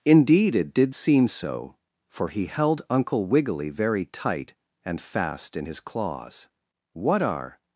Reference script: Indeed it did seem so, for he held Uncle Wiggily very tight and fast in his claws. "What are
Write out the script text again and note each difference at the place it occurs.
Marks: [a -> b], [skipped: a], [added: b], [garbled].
Indeed it did seem so, for he held Uncle Wiggily very tight and fast in his claws. "What are